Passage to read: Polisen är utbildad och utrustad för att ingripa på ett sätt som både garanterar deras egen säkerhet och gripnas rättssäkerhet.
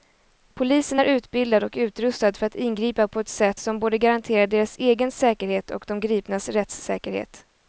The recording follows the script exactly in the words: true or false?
false